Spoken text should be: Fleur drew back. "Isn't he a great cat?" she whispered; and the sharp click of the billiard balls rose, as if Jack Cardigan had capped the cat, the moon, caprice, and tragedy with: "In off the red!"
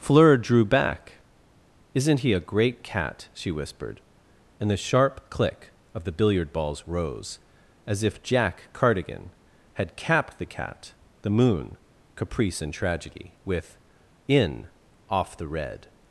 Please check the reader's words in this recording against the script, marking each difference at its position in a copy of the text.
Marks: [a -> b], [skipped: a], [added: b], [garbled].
Fleur drew back. "Isn't he a great cat?" she whispered; and the sharp click of the billiard balls rose, as if Jack Cardigan had capped the cat, the moon, caprice, and tragedy with: "In off the red!"